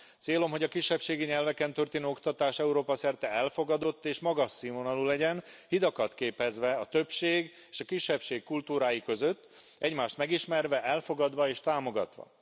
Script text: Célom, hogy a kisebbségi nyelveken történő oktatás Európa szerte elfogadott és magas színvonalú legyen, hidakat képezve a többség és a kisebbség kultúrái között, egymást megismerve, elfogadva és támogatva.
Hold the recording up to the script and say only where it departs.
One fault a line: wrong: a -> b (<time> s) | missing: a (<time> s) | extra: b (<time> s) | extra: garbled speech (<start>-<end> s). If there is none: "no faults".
no faults